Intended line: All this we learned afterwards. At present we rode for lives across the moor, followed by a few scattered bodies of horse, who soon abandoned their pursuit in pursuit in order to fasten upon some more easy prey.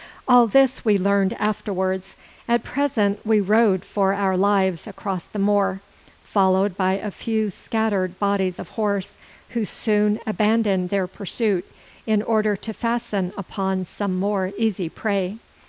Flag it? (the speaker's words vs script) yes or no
yes